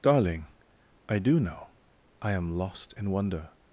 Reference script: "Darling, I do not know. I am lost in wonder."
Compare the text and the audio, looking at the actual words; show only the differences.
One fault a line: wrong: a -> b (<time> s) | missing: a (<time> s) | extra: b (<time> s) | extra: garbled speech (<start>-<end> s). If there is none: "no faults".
missing: not (1.4 s)